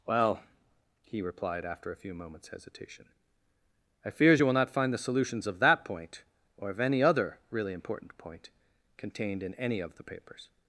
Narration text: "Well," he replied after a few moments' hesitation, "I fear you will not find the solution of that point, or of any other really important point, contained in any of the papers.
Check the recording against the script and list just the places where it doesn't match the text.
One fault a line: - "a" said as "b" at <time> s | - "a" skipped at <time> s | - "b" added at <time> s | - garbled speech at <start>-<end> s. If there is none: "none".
- "fear" said as "fears" at 4.1 s
- "solution" said as "solutions" at 5.0 s